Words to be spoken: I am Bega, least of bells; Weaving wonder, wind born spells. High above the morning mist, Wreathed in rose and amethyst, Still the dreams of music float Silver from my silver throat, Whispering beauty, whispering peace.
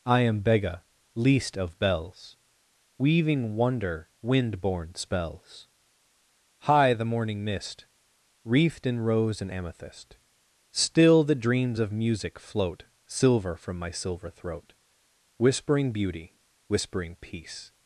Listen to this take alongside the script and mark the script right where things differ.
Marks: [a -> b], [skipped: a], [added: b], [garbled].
I am Bega, least of bells; Weaving wonder, wind born spells. High [skipped: above] the morning mist, Wreathed in rose and amethyst, Still the dreams of music float Silver from my silver throat, Whispering beauty, whispering peace.